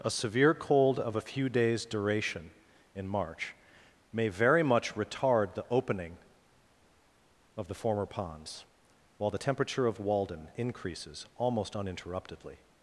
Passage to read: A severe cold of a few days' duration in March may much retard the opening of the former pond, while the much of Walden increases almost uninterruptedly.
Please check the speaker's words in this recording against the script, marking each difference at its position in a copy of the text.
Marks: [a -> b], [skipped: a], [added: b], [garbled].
A severe cold of a few days' duration in March may [added: very] much retard the opening of the former [pond, -> ponds] while the [much -> temperature] of Walden increases almost uninterruptedly.